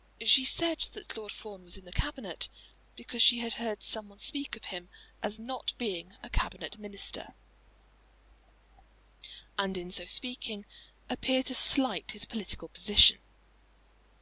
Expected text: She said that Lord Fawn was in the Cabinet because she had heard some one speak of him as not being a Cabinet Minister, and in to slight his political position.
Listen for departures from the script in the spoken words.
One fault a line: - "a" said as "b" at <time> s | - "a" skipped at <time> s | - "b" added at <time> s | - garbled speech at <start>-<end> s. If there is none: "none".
- "so speaking appear" added at 9.9 s